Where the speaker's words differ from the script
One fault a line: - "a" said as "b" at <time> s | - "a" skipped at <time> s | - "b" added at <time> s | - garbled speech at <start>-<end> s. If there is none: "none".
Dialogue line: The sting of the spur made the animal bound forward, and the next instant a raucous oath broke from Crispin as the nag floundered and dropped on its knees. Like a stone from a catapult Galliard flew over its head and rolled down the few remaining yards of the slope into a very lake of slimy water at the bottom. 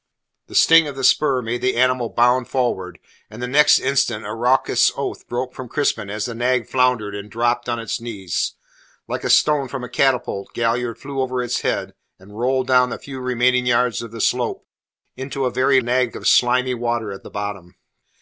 - "lake" said as "nag" at 15.8 s